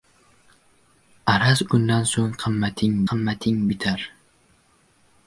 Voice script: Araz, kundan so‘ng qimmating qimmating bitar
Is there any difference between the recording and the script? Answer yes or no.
no